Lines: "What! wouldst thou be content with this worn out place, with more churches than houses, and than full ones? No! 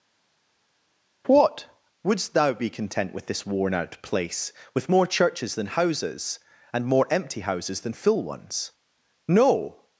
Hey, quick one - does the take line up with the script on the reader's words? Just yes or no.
no